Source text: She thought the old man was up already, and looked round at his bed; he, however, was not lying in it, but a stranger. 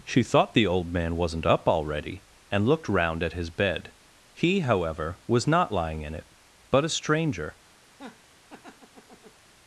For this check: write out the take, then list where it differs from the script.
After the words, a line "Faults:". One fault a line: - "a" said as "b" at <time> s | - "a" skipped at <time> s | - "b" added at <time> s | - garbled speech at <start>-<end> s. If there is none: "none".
She thought the old man wasn't up already, and looked round at his bed; he, however, was not lying in it, but a stranger.
Faults:
- "was" said as "wasn't" at 1.1 s